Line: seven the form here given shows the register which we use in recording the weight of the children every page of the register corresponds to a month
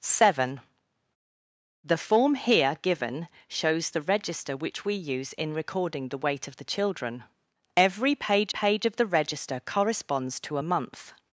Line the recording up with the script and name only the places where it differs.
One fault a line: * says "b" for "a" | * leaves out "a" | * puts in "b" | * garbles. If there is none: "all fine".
* puts in "page"